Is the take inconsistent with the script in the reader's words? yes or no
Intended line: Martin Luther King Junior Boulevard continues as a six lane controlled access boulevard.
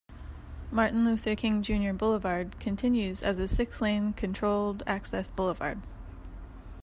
no